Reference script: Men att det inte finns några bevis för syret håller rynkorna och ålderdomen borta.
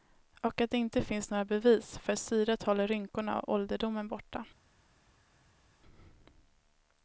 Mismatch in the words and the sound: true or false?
true